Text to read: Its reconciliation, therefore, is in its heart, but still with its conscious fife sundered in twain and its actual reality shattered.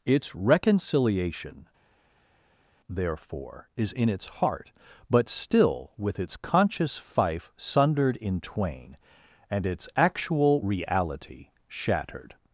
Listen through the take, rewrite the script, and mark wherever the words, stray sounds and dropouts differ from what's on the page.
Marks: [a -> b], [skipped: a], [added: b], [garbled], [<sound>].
Its reconciliation, therefore, is in its heart, but still with its conscious fife sundered in twain and its actual reality shattered.